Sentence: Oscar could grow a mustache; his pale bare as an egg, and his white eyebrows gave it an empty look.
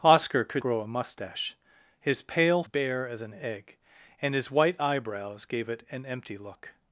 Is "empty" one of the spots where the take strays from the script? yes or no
no